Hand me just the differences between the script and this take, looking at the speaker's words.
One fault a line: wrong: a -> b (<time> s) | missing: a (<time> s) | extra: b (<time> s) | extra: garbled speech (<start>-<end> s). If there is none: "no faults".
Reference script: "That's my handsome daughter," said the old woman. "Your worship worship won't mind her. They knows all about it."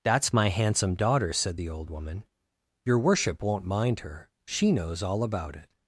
missing: worship (3.4 s)
wrong: They -> She (4.5 s)